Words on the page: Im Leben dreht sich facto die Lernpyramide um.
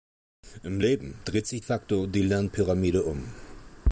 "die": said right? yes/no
yes